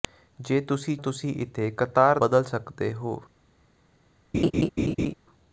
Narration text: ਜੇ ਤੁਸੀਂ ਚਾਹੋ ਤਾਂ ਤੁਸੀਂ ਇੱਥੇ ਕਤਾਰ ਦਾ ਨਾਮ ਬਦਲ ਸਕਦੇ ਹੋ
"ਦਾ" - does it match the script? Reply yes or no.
no